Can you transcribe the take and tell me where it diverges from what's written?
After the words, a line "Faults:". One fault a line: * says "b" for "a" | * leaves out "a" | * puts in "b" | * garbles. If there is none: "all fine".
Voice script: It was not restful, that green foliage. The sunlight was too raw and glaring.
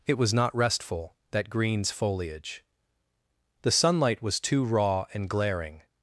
It was not restful, that greens foliage. The sunlight was too raw and glaring.
Faults:
* says "greens" for "green"